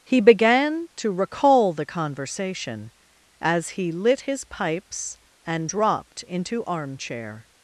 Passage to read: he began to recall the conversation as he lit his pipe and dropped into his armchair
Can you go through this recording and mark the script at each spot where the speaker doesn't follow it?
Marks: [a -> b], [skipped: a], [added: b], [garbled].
he began to recall the conversation as he lit his [pipe -> pipes] and dropped into [skipped: his] armchair